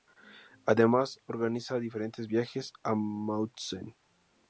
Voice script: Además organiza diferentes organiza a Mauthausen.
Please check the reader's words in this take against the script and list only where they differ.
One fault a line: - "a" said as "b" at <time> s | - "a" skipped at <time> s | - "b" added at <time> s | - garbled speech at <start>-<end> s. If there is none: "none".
- "organiza" said as "viajes" at 2.3 s